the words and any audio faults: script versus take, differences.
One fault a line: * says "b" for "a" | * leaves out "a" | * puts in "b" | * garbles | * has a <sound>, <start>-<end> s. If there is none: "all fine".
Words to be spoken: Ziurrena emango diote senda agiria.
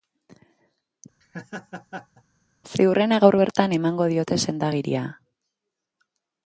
* has a laugh, 1.2-2.2 s
* puts in "gaur bertan"